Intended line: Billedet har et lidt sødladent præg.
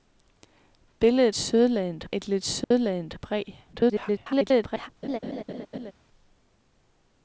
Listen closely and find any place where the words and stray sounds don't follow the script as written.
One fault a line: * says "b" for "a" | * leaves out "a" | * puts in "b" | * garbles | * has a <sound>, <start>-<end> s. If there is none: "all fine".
* says "sødladent" for "har"
* has a dropout, 2.6-2.7 s
* garbles
* has a laugh, 5.0-5.9 s